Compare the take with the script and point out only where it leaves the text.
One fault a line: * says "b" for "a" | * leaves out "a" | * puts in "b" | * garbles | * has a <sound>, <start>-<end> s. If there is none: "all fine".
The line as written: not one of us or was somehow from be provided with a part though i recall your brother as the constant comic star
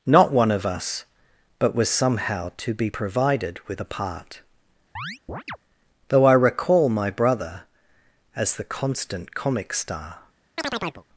* says "but" for "or"
* says "to" for "from"
* has a chirp, 5.0-5.6 s
* says "my" for "your"
* has a chirp, 10.6-11.0 s